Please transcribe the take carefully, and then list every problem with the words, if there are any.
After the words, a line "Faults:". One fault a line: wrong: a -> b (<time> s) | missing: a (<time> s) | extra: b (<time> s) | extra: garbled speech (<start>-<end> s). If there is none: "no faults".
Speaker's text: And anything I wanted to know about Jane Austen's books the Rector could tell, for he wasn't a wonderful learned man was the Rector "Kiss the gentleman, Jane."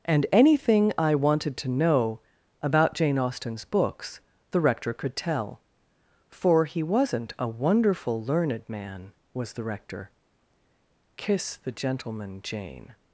And anything I wanted to know about Jane Austen's books the Rector could tell, for he wasn't a wonderful learned man was the Rector "Kiss the gentleman, Jane."
Faults:
no faults